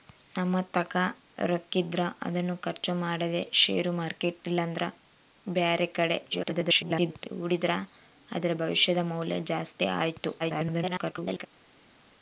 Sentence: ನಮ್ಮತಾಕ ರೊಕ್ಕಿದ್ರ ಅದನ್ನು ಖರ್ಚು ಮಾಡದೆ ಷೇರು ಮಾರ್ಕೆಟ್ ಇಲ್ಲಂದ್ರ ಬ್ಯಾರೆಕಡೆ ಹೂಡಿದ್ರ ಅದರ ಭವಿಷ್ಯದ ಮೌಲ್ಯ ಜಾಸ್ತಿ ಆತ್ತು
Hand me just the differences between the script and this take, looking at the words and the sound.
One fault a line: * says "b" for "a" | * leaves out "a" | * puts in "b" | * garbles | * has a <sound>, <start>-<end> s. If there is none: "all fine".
* garbles
* garbles